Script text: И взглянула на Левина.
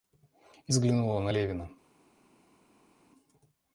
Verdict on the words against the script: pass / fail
pass